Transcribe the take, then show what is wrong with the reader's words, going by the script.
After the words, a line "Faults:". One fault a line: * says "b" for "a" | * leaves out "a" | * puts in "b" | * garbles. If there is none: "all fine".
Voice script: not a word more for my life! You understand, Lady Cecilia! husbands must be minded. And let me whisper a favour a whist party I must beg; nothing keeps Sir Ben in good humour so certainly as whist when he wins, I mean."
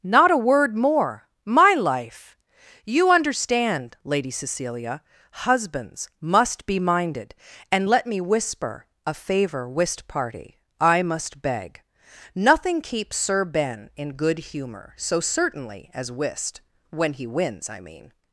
not a word more my life! You understand, Lady Cecilia! husbands must be minded. And let me whisper a favour whist party I must beg; nothing keeps Sir Ben in good humour so certainly as whist when he wins, I mean."
Faults:
* leaves out "for"
* leaves out "a"